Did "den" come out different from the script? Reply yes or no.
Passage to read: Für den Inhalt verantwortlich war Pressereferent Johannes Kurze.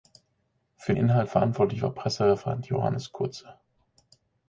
yes